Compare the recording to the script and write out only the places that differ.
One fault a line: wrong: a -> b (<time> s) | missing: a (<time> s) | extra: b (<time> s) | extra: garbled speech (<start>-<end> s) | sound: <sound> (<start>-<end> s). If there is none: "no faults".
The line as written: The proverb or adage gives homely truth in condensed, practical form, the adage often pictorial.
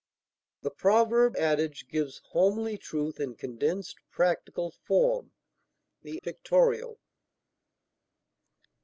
missing: or (1.4 s)
missing: adage often (6.2 s)